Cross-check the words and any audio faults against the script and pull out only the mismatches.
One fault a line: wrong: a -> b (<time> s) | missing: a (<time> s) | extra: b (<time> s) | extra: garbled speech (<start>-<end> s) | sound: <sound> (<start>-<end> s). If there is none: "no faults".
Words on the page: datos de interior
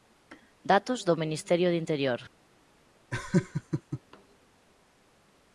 extra: do ministerio (1.1 s)
sound: laugh (3.1-4.0 s)